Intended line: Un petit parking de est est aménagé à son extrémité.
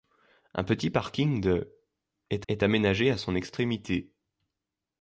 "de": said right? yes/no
yes